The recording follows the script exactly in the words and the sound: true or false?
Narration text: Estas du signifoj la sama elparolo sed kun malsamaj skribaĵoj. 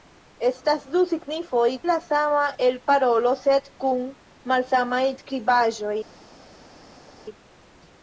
true